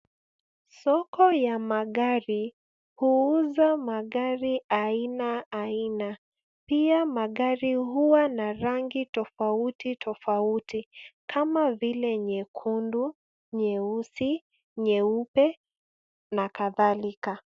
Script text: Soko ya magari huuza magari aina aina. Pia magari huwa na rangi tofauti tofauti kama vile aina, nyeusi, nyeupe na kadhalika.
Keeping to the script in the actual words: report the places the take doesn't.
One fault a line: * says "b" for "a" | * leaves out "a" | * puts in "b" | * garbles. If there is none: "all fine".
* says "nyekundu" for "aina"